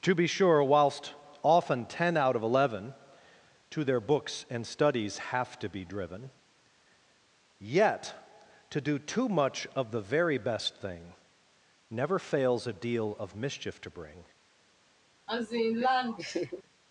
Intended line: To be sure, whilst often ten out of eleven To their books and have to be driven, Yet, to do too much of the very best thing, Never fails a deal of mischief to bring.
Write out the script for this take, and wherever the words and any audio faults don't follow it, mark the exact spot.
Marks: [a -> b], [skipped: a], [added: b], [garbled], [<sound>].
To be sure, whilst often ten out of eleven To their books and [added: studies] have to be driven, Yet, to do too much of the very best thing, Never fails a deal of mischief to bring. [laugh]